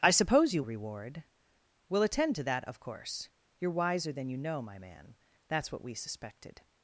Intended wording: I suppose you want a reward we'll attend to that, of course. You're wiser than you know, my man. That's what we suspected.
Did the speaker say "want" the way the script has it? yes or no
no